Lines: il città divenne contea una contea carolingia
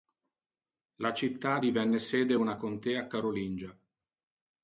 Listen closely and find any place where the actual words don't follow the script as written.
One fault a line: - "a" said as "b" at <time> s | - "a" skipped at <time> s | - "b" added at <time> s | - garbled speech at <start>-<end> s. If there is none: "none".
- "il" said as "la" at 0.9 s
- "contea" said as "sede" at 2.0 s